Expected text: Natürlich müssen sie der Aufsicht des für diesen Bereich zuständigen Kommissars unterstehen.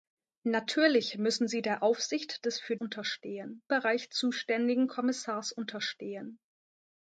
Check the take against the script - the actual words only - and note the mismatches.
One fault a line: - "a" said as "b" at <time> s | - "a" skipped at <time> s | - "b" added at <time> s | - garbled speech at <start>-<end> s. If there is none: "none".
- "diesen" said as "unterstehen" at 2.7 s